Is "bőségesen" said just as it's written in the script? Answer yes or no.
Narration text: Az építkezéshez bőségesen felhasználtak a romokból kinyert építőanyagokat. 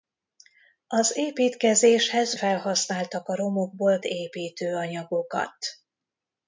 no